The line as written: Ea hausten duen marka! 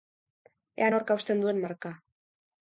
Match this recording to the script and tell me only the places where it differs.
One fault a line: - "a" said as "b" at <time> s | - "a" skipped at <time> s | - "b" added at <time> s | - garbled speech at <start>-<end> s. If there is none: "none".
- "nork" added at 0.9 s